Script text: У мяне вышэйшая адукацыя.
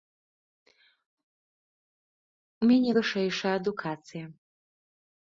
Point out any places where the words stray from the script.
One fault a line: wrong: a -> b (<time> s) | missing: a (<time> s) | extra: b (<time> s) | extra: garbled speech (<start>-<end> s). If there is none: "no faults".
no faults